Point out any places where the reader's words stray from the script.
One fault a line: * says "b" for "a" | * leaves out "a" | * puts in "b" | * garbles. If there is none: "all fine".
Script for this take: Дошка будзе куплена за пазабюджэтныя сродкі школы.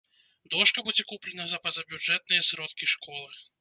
all fine